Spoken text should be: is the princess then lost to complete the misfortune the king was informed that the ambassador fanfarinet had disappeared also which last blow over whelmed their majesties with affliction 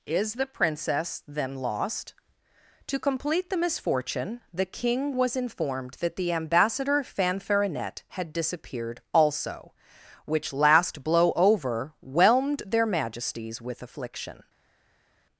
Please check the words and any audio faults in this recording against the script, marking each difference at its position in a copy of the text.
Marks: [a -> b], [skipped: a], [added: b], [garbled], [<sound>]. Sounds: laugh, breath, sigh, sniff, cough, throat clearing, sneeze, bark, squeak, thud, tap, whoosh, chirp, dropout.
is the princess then lost to complete the misfortune the king was informed that the ambassador fanfarinet had disappeared also which last blow over whelmed their majesties with affliction